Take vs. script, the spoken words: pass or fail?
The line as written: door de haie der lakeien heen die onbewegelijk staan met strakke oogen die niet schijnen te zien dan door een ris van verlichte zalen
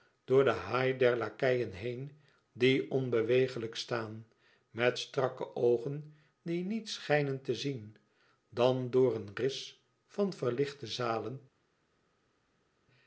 pass